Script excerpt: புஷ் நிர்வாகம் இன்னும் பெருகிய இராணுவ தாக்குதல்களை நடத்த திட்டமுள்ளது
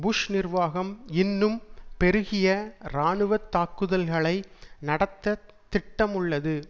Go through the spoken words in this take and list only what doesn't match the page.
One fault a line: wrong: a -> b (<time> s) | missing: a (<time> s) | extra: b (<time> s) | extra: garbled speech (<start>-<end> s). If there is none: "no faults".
no faults